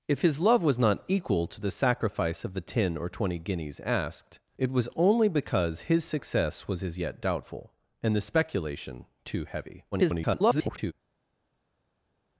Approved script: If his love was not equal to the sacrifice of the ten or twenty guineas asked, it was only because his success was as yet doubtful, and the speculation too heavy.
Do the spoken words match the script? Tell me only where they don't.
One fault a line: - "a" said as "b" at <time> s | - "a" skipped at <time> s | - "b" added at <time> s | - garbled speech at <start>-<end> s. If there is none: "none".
- garbled speech at 9.9-10.9 s